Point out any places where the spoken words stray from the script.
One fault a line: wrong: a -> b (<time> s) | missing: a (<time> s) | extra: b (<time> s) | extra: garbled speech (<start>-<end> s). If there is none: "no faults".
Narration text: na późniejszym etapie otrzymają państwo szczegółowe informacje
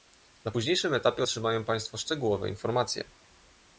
no faults